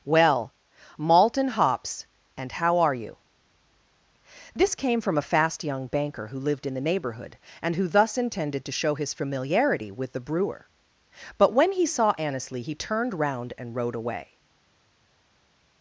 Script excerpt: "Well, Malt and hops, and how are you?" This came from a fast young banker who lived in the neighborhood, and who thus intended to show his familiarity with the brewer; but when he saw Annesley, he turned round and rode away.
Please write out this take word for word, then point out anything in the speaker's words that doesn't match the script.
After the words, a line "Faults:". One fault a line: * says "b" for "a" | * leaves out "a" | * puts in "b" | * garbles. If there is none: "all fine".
"Well, Malt and hops, and how are you?" This came from a fast young banker who lived in the neighborhood, and who thus intended to show his familiarity with the brewer; but when he saw Annesley, he turned round and rode away.
Faults:
all fine